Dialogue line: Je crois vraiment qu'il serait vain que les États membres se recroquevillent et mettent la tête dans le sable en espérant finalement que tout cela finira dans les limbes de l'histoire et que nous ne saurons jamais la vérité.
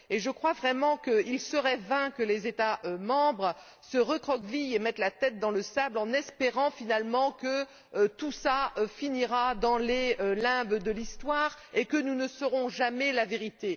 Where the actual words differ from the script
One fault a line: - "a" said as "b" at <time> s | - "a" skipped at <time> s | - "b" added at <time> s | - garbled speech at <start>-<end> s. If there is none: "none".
none